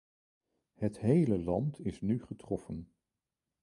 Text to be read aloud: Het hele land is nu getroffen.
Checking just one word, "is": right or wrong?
right